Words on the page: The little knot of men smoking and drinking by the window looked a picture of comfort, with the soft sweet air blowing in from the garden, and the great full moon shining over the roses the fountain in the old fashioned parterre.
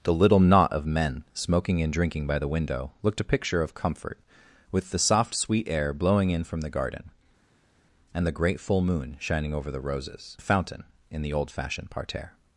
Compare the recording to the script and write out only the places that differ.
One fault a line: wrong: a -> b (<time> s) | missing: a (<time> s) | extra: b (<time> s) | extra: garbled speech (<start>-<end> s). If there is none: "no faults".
no faults